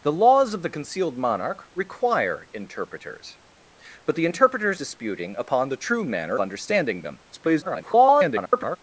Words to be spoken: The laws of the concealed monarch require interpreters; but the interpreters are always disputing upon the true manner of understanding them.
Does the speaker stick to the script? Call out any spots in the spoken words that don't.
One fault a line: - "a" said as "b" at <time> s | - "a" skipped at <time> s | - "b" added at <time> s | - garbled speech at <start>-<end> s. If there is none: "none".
- "are always" skipped at 4.8 s
- "of" skipped at 6.4 s
- garbled speech at 7.3-8.8 s